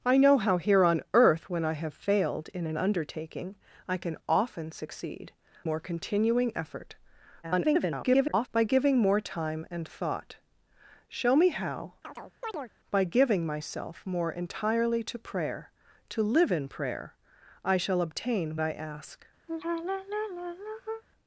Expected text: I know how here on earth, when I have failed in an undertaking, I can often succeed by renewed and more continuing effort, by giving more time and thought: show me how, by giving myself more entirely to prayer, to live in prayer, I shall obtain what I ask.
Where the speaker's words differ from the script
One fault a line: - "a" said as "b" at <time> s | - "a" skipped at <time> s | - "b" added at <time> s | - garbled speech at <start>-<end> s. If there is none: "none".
- "by renewed and" skipped at 5.3 s
- garbled speech at 7.4-8.5 s
- "what" skipped at 18.6 s